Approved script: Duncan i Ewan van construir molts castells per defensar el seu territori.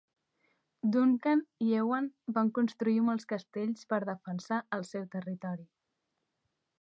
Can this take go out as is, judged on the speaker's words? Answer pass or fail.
pass